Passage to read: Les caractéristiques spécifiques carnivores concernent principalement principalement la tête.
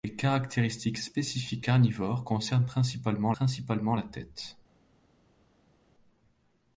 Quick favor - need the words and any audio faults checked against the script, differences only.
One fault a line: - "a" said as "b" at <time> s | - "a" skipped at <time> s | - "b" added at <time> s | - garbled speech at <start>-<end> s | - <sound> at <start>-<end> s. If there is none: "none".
none